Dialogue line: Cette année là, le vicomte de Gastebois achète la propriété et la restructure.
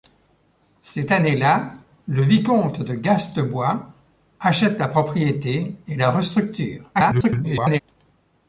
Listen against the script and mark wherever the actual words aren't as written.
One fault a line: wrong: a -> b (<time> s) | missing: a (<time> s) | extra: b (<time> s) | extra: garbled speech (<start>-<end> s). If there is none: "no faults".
extra: garbled speech (6.9-7.8 s)